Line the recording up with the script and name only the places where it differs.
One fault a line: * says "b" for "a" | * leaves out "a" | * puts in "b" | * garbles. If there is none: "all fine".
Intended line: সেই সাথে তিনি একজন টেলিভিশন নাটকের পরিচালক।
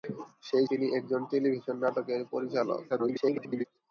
* leaves out "সাথে"
* garbles